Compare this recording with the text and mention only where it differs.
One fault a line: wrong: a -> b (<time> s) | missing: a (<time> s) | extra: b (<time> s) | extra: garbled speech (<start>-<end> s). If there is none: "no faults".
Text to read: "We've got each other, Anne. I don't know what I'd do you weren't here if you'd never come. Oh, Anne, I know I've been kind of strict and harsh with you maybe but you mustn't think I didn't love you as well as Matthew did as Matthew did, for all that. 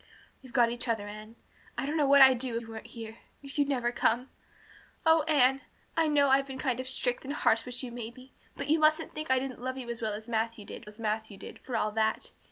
no faults